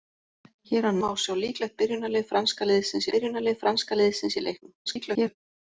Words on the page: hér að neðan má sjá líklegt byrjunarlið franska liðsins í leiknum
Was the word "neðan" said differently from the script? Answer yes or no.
yes